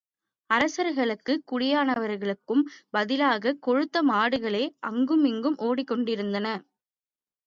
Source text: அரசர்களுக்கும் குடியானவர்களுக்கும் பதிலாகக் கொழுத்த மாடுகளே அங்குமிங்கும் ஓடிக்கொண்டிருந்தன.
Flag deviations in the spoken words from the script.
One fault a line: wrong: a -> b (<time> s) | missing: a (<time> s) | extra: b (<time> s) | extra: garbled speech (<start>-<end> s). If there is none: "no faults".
no faults